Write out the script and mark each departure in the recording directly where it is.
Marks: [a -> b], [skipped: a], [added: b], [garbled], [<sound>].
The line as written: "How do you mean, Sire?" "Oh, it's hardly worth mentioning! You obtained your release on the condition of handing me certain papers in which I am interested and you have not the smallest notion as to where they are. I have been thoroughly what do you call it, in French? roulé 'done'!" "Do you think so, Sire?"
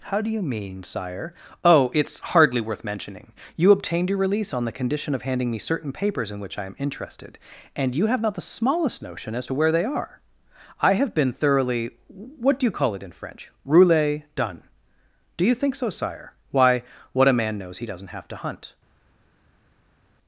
"How do you mean, Sire?" "Oh, it's hardly worth mentioning! You obtained your release on the condition of handing me certain papers in which I am interested and you have not the smallest notion as to where they are. I have been thoroughly what do you call it, in French? roulé 'done'!" "Do you think so, Sire?" [added: Why what a man knows he doesn't have to hunt]